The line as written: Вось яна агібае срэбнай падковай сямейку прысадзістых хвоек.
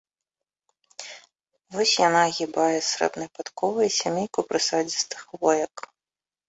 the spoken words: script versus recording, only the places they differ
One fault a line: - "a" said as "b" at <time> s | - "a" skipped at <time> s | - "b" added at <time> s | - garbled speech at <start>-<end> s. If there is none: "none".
none